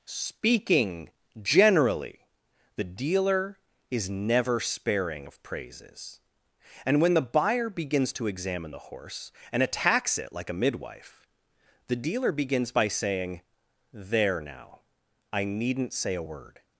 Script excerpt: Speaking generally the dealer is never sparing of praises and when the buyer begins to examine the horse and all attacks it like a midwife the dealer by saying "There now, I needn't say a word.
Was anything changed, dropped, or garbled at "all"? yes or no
yes